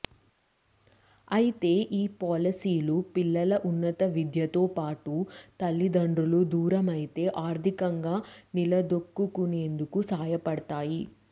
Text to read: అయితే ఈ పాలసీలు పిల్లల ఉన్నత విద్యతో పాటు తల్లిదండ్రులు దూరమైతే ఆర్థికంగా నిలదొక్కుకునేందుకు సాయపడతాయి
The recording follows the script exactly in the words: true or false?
true